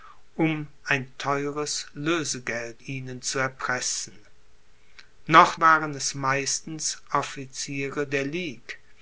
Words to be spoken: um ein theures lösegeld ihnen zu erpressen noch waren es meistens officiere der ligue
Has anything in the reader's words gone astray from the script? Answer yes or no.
no